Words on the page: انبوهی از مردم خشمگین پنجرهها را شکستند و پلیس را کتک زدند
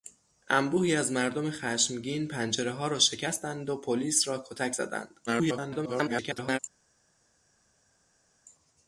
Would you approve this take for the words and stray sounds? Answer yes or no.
no